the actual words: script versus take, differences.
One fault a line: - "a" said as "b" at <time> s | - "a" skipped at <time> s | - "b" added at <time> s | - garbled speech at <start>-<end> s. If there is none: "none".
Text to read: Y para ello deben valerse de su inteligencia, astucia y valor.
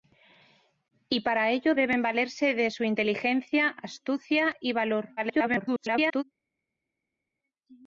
- garbled speech at 5.2-6.2 s